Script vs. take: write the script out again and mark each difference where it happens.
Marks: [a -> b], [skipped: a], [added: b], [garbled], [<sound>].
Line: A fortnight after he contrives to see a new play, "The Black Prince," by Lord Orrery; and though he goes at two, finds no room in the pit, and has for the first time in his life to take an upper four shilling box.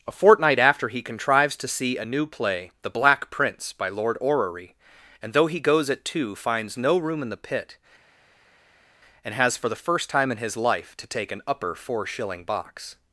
A fortnight after he contrives to see a new play, "The Black Prince," by Lord Orrery; and though he goes at two, finds no room in the pit, and has for the first time in his life to take an upper four shilling box.